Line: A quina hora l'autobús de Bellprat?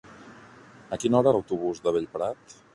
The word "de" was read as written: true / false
true